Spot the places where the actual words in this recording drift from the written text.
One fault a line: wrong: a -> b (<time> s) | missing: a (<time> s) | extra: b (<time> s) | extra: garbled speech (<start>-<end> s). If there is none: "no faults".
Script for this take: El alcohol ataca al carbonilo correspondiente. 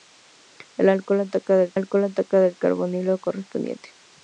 extra: alcohol ataca al (1.7 s)